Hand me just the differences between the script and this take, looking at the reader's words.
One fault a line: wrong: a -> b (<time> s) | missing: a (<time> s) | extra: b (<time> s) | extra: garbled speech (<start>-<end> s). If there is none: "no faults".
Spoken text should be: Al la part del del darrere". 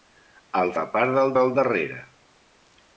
no faults